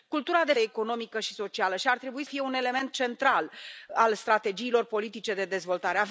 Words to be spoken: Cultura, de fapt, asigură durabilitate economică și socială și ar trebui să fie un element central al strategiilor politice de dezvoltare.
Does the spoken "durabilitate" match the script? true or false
false